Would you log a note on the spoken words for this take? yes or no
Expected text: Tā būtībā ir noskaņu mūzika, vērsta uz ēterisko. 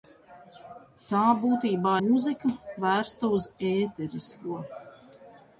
yes